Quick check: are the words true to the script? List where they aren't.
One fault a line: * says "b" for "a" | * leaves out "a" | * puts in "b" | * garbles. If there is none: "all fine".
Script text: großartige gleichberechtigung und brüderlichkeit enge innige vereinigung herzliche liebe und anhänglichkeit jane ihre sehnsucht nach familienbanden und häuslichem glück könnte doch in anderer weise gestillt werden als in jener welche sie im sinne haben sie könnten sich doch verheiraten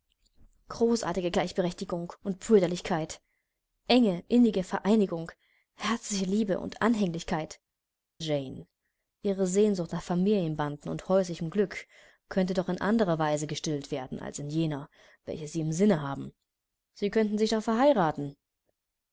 all fine